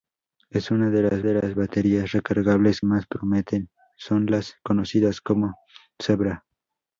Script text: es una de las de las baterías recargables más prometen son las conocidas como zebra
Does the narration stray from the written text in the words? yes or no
no